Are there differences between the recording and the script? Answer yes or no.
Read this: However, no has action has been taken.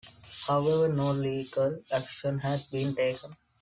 yes